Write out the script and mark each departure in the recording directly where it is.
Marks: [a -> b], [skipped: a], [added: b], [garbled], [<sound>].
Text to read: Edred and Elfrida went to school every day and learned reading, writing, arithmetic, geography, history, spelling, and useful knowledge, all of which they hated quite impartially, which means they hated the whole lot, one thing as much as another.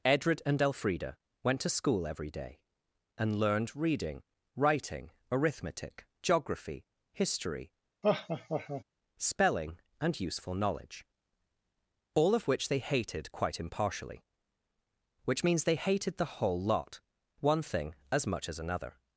Edred and Elfrida went to school every day and learned reading, writing, arithmetic, geography, history, [laugh] spelling, and useful knowledge, all of which they hated quite impartially, which means they hated the whole lot, one thing as much as another.